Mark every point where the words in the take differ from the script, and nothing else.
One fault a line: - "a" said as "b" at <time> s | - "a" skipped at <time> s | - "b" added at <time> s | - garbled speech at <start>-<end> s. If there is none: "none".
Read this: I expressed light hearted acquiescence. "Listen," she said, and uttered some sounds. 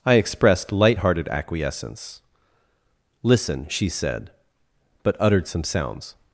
- "and" said as "but" at 5.0 s